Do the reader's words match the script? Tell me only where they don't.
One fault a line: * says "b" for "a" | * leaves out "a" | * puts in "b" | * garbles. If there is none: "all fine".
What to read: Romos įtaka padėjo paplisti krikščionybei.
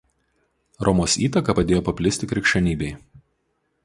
all fine